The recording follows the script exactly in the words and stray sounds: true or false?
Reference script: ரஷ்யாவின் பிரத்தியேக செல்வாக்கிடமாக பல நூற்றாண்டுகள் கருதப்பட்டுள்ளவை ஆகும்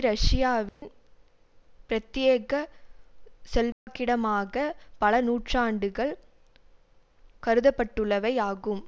false